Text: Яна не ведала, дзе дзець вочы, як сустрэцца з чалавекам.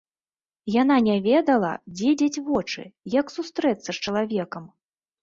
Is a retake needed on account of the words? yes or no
no